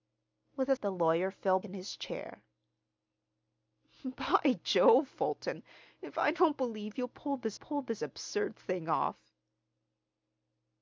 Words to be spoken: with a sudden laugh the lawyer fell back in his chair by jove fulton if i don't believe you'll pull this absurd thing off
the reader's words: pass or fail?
fail